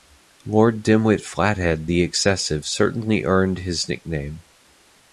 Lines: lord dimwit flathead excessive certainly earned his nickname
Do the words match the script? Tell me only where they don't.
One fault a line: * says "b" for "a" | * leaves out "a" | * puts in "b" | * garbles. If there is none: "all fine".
* puts in "the"